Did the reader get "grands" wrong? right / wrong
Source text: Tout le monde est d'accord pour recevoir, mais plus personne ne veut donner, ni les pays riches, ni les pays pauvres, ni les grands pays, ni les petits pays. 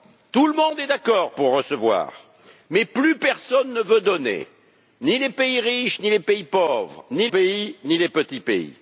wrong